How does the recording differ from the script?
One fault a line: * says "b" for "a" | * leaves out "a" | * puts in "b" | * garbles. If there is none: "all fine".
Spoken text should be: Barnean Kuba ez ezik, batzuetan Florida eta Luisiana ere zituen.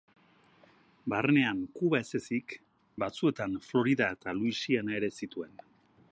all fine